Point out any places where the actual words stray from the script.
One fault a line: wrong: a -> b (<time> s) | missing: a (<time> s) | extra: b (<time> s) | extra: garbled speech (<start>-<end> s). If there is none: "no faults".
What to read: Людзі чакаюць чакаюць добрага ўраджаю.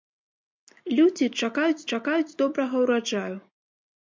no faults